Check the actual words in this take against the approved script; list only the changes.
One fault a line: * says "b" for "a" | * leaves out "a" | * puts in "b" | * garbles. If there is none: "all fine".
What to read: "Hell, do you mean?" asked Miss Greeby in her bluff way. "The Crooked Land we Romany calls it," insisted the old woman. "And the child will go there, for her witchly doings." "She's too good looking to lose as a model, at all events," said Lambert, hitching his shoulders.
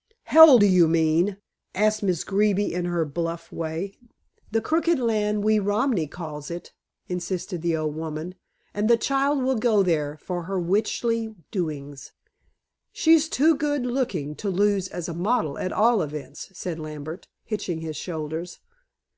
all fine